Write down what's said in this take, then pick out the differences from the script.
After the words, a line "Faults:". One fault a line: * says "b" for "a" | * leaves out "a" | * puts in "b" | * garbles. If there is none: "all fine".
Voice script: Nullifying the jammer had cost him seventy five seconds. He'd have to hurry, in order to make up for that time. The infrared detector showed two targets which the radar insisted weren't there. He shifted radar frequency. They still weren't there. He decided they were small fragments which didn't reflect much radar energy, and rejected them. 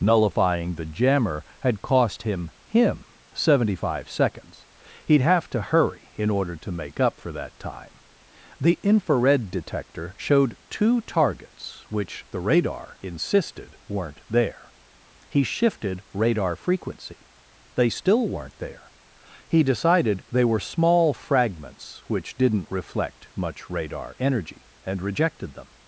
Nullifying the jammer had cost him him seventy five seconds. He'd have to hurry, in order to make up for that time. The infrared detector showed two targets which the radar insisted weren't there. He shifted radar frequency. They still weren't there. He decided they were small fragments which didn't reflect much radar energy, and rejected them.
Faults:
* puts in "him"